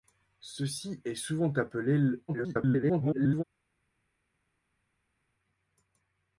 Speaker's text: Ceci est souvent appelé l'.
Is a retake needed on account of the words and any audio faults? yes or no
yes